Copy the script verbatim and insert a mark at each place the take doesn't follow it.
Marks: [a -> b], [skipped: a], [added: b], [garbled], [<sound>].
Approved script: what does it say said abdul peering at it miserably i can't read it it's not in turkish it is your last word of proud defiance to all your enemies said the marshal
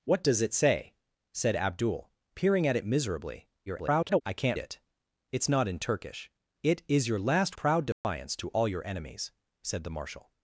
what does it say said abdul peering at it miserably [garbled] i can't [skipped: read] it it's not in turkish it is your last [skipped: word of] proud defiance [dropout] to all your enemies said the marshal